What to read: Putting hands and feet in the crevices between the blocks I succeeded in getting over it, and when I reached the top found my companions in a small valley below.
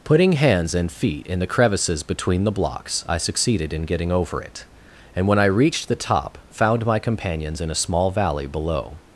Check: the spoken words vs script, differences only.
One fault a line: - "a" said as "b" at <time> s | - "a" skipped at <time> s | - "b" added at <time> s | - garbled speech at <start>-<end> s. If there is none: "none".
none